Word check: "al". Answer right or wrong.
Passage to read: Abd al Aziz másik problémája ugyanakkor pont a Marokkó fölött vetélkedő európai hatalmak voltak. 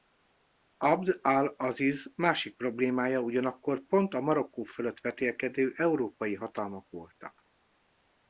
right